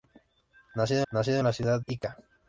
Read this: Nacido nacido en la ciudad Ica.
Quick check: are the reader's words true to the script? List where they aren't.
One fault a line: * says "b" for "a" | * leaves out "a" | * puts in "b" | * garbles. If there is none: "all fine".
all fine